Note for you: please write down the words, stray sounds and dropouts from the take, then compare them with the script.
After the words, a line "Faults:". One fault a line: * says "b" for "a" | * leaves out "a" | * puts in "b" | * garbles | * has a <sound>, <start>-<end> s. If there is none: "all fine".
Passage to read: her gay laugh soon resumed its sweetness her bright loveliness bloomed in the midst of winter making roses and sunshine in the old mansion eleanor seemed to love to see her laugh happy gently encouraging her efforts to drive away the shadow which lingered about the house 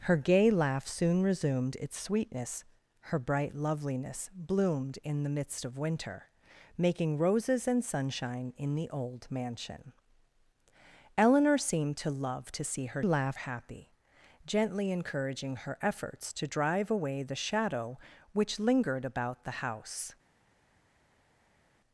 her gay laugh soon resumed its sweetness her bright loveliness bloomed in the midst of winter making roses and sunshine in the old mansion eleanor seemed to love to see her laugh happy gently encouraging her efforts to drive away the shadow which lingered about the house
Faults:
all fine